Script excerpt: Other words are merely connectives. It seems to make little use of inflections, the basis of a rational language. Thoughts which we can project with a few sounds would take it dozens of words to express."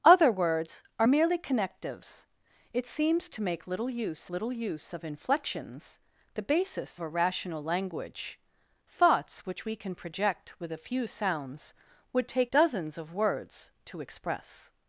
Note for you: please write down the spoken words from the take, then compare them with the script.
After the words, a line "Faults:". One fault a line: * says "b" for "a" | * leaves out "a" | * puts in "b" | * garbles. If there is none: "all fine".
Other words are merely connectives. It seems to make little use little use of inflections, the basis a rational language. Thoughts which we can project with a few sounds would take dozens of words to express."
Faults:
* puts in "little use"
* leaves out "of"
* leaves out "it"